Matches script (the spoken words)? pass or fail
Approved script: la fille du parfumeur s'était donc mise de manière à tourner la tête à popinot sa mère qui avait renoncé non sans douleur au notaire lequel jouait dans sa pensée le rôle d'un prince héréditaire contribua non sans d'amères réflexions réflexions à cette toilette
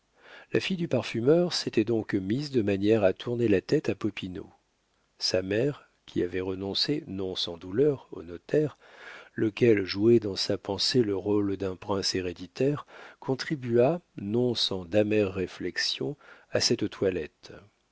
fail